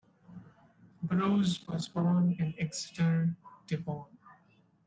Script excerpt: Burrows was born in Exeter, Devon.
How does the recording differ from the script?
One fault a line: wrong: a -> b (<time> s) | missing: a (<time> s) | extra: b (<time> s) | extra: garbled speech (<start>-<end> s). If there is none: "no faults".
no faults